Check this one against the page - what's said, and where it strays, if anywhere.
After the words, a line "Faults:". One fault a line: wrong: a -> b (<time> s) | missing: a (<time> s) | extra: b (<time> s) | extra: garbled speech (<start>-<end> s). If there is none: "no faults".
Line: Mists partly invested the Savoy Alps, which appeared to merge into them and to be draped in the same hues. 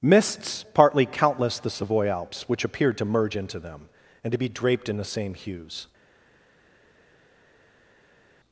Mists partly countless the Savoy Alps, which appeared to merge into them and to be draped in the same hues.
Faults:
wrong: invested -> countless (1.1 s)